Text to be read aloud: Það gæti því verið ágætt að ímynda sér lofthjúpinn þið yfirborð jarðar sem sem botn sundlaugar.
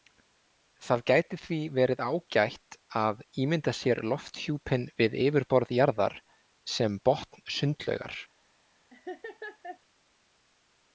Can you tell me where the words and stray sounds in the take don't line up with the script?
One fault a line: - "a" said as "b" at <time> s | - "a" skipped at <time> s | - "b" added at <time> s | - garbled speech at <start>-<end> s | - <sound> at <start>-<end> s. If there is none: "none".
- "þið" said as "við" at 5.0 s
- "sem" skipped at 7.0 s
- laugh at 8.9-9.8 s